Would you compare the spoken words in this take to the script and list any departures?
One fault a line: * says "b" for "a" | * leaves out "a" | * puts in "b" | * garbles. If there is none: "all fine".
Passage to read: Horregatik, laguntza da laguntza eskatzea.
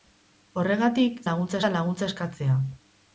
all fine